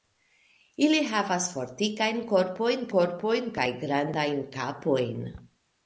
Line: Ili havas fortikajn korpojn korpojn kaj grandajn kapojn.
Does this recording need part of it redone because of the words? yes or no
no